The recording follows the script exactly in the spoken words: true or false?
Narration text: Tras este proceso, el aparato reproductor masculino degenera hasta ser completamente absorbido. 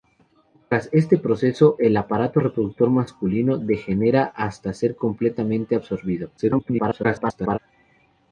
false